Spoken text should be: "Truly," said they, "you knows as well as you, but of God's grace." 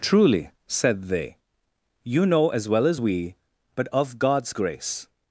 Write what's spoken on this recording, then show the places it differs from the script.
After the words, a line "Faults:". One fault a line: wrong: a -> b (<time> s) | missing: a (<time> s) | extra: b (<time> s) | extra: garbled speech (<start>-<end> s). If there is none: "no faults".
"Truly," said they, "you know as well as we, but of God's grace."
Faults:
wrong: knows -> know (2.2 s)
wrong: you -> we (3.0 s)